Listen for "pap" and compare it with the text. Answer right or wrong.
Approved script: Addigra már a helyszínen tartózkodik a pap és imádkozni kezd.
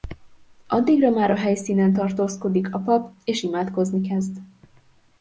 right